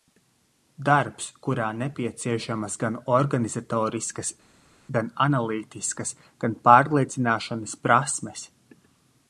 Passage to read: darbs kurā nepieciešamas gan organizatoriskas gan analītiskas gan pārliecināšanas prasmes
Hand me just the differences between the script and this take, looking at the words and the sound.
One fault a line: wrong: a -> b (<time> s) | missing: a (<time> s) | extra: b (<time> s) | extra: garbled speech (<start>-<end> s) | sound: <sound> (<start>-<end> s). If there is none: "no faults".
no faults